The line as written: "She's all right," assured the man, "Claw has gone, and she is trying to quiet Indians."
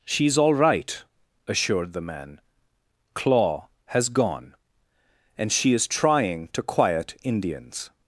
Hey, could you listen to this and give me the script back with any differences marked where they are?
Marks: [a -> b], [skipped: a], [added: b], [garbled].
"She's all right," assured the man, "Claw has gone, and she is trying to quiet Indians."